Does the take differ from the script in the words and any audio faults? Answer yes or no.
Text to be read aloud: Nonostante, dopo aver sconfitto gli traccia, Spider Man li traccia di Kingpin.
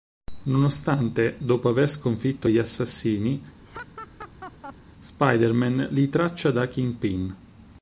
yes